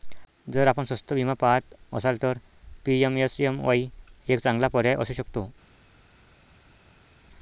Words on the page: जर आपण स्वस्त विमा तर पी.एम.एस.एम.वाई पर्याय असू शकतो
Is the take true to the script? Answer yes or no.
no